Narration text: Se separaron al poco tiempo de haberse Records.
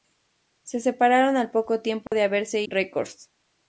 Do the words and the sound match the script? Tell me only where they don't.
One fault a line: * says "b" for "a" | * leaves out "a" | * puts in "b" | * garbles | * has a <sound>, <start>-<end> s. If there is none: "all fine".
* has a dropout, 2.1-2.1 s